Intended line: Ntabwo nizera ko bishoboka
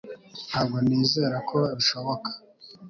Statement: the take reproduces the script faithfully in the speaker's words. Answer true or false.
true